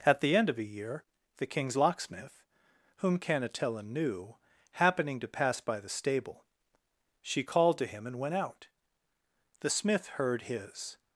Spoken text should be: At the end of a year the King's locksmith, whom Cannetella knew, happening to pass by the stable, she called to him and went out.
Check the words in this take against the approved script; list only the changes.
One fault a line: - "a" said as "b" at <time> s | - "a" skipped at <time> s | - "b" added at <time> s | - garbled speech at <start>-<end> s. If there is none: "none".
- "The smith heard his" added at 9.6 s